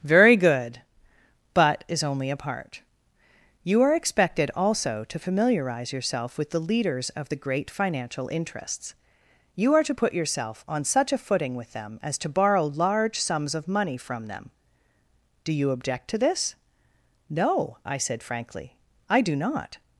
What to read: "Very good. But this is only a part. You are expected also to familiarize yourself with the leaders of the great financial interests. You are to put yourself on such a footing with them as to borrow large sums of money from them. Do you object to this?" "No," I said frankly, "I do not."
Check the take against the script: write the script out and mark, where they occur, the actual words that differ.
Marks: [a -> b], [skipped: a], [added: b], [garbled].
"Very good. But [skipped: this] is only a part. You are expected also to familiarize yourself with the leaders of the great financial interests. You are to put yourself on such a footing with them as to borrow large sums of money from them. Do you object to this?" "No," I said frankly, "I do not."